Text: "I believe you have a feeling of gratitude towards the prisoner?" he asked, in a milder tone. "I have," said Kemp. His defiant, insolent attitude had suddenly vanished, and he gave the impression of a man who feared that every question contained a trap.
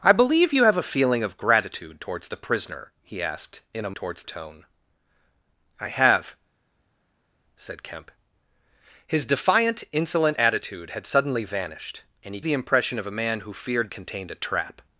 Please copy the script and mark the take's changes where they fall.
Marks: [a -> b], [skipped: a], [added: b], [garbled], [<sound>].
"I believe you have a feeling of gratitude towards the prisoner?" he asked, in a [milder -> towards] tone. "I have," said Kemp. His defiant, insolent attitude had suddenly vanished, and he [skipped: gave] the impression of a man who feared [skipped: that every question] contained a trap.